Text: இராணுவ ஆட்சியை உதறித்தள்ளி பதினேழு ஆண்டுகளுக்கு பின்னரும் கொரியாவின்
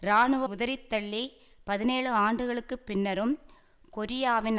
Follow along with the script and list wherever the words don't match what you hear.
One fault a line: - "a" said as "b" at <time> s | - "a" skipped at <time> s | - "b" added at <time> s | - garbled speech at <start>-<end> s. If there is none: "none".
- "ஆட்சியை" skipped at 0.5 s